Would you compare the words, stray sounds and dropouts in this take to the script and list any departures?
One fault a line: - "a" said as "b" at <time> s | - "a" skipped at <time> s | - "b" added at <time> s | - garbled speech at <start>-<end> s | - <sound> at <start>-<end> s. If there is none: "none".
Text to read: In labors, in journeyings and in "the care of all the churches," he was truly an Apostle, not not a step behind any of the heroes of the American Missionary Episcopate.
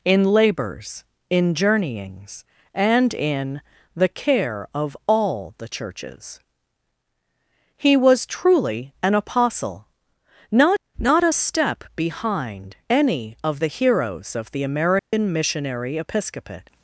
- dropout at 15.0-15.1 s